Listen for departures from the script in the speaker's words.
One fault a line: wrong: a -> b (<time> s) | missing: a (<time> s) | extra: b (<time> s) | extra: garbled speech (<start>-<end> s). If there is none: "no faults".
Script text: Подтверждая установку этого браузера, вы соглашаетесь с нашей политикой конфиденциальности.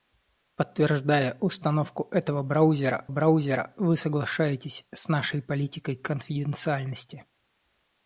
extra: браузера (3.1 s)